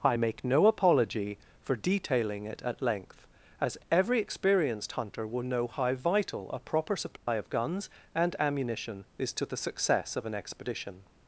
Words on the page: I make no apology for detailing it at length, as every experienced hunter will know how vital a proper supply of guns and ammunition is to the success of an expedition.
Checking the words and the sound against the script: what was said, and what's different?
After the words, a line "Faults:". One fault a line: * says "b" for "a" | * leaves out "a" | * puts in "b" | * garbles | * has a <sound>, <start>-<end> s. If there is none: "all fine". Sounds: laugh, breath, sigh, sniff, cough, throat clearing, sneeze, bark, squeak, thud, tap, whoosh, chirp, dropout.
I make no apology for detailing it at length, as every experienced hunter will know how vital a proper supply of guns and ammunition is to the success of an expedition.
Faults:
* has a dropout, 7.2-7.3 s